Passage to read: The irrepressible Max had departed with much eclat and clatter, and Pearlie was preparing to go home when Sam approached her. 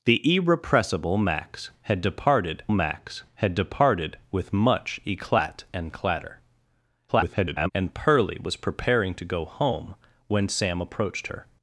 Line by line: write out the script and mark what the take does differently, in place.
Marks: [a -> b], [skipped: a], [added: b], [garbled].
The irrepressible Max had departed [added: Max had departed] with much eclat and clatter, [garbled] and Pearlie was preparing to go home when Sam approached her.